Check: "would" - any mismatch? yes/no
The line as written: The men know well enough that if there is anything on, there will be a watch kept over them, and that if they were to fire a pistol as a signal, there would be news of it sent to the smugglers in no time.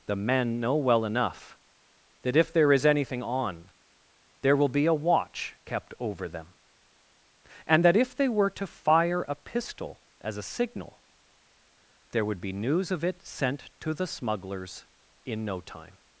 no